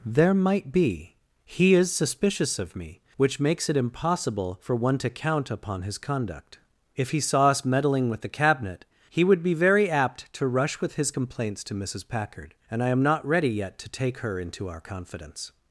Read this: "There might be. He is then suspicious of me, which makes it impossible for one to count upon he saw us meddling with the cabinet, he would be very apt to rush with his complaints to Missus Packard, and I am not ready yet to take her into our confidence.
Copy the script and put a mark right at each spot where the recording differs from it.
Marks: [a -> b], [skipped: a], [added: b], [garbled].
"There might be. He is [skipped: then] suspicious of me, which makes it impossible for one to count upon [added: his conduct If] he saw us meddling with the cabinet, he would be very apt to rush with his complaints to Missus Packard, and I am not ready yet to take her into our confidence.